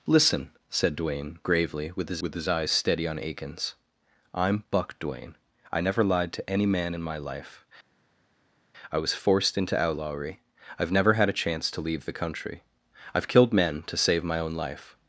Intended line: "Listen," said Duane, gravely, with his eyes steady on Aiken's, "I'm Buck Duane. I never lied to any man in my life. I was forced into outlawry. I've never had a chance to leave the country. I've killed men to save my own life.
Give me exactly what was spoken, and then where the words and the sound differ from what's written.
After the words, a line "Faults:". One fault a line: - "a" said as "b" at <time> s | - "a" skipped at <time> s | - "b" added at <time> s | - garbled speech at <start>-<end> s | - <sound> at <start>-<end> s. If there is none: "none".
"Listen," said Duane, gravely, with his with his eyes steady on Aiken's, "I'm Buck Duane. I never lied to any man in my life. I was forced into outlawry. I've never had a chance to leave the country. I've killed men to save my own life.
Faults:
- "with his" added at 2.2 s